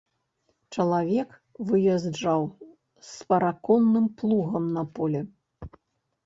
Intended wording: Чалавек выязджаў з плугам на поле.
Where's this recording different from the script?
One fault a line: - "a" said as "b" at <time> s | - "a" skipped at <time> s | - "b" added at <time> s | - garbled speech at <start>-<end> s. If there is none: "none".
- "параконным" added at 3.3 s